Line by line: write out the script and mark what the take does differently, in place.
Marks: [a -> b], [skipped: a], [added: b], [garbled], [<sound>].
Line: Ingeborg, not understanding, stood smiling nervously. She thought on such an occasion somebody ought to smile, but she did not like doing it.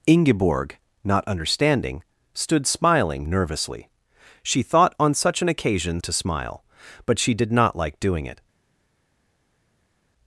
Ingeborg, not understanding, stood smiling nervously. She thought on such an occasion [skipped: somebody ought] to smile, but she did not like doing it.